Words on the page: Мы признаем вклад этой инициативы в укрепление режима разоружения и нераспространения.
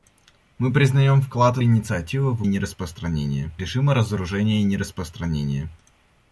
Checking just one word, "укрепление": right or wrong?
wrong